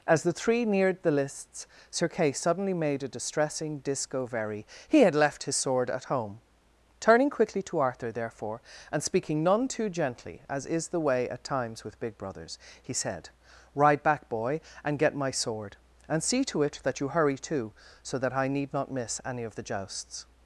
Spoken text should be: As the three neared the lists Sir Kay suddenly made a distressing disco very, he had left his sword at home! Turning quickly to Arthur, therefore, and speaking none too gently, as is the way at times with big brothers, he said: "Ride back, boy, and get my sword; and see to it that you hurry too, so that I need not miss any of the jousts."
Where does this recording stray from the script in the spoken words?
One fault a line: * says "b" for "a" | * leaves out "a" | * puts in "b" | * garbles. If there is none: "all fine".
all fine